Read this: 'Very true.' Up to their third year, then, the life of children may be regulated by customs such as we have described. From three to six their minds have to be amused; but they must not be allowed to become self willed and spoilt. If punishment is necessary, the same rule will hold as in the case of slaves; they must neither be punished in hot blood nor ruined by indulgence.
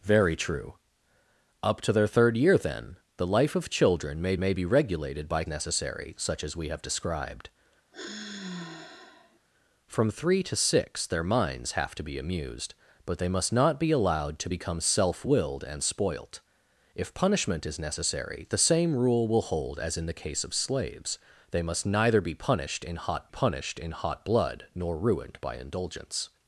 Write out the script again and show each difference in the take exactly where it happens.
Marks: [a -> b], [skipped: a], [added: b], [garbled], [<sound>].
'Very true.' Up to their third year, then, the life of children may [added: may] be regulated by [customs -> necessary] such as we have described. [sigh] From three to six their minds have to be amused; but they must not be allowed to become self willed and spoilt. If punishment is necessary, the same rule will hold as in the case of slaves; they must neither be punished in hot [added: punished in hot] blood nor ruined by indulgence.